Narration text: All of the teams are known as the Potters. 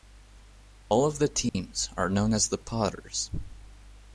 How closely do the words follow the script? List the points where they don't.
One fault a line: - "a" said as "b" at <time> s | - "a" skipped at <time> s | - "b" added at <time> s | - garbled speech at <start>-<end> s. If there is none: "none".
none